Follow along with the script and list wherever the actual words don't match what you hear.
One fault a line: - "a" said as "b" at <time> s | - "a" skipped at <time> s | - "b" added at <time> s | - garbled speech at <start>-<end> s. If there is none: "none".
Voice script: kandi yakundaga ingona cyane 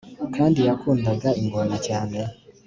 none